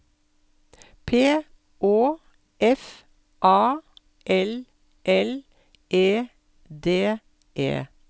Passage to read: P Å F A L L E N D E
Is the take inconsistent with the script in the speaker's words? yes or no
yes